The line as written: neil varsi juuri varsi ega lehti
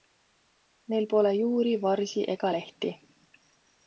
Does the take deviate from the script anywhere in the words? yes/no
yes